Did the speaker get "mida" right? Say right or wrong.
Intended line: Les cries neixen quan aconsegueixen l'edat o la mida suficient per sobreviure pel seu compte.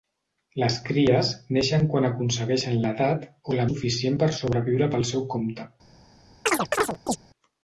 wrong